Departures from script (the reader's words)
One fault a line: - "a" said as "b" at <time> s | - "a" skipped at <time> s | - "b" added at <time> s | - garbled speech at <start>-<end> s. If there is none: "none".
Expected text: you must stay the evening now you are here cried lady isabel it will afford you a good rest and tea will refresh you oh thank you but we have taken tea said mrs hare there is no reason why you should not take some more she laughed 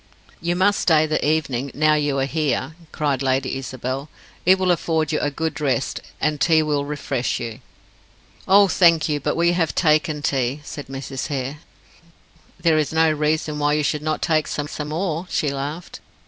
- "some" added at 14.7 s